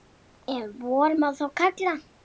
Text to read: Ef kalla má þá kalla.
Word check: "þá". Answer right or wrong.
right